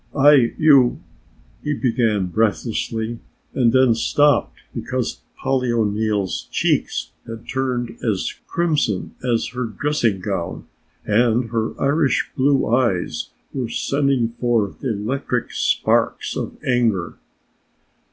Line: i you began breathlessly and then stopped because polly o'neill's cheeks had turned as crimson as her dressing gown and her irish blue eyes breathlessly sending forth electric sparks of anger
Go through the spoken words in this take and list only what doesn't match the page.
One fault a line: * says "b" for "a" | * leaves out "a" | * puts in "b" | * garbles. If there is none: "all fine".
* puts in "he"
* says "were" for "breathlessly"